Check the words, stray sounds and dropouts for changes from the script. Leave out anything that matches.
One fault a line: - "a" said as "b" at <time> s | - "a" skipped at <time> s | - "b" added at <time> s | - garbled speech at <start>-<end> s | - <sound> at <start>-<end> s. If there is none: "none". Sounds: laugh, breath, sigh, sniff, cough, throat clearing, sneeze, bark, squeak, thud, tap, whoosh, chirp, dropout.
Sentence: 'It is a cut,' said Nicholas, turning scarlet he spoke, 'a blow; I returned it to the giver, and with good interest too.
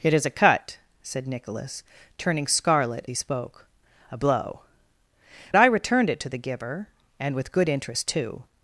none